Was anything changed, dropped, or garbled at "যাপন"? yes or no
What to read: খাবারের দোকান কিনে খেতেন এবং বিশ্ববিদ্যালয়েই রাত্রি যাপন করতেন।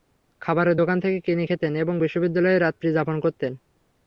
no